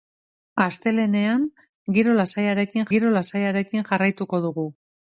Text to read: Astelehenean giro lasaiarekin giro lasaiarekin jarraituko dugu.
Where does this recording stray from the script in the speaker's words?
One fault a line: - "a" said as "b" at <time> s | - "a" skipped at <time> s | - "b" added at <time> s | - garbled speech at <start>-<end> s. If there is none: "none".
none